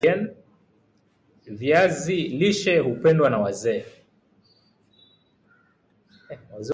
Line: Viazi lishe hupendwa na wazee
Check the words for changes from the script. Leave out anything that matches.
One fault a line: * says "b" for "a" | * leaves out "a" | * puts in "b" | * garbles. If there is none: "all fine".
all fine